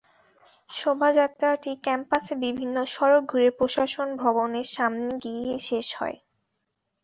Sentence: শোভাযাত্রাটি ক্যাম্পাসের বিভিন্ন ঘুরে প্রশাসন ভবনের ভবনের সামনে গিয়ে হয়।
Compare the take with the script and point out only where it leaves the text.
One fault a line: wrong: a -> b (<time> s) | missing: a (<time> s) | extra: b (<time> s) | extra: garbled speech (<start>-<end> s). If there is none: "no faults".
extra: সড়ক (2.9 s)
missing: ভবনের (4.7 s)
extra: শেষ (5.7 s)